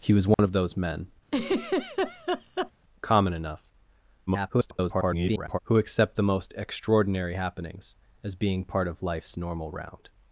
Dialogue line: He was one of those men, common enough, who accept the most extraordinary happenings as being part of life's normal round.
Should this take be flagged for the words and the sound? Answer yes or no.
yes